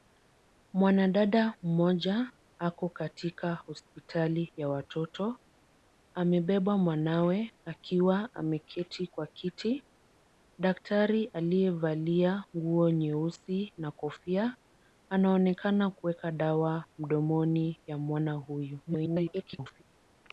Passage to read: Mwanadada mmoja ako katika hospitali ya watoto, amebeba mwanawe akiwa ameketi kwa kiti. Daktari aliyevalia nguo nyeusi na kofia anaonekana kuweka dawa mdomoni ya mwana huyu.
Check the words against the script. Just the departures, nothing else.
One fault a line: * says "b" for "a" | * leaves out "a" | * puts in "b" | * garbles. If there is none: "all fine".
* garbles